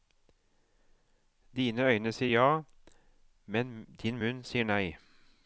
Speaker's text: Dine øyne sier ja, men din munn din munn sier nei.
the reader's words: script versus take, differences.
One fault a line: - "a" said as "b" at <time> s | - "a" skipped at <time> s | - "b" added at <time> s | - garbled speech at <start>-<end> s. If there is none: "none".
- "din munn" skipped at 4.4 s